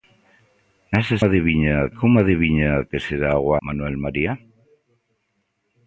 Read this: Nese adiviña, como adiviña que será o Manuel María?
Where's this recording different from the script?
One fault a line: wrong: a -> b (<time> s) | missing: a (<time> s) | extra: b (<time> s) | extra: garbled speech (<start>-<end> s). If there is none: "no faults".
no faults